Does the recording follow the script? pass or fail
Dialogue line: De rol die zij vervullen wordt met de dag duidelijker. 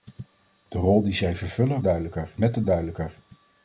fail